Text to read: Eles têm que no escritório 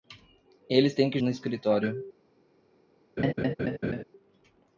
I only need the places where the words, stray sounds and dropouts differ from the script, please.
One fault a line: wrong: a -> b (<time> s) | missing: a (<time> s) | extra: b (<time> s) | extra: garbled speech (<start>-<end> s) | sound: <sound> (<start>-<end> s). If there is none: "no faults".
sound: laugh (3.2-4.0 s)